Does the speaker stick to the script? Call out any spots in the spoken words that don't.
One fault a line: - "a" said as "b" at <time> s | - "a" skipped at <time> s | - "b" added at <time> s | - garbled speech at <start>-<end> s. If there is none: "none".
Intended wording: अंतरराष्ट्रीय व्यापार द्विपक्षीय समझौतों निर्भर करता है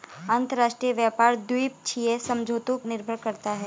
none